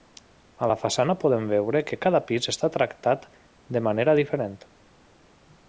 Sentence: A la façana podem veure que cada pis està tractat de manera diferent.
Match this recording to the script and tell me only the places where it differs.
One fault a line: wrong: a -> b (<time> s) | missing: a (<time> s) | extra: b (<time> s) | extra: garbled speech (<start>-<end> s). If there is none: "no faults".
no faults